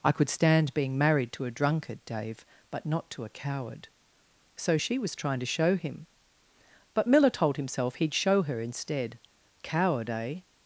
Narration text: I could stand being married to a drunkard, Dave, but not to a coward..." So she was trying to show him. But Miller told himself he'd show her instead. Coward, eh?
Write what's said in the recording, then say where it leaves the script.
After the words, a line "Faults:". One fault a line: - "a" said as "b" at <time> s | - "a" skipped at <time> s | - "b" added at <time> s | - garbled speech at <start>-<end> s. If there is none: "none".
I could stand being married to a drunkard, Dave, but not to a coward..." So she was trying to show him. But Miller told himself he'd show her instead. Coward, eh?
Faults:
none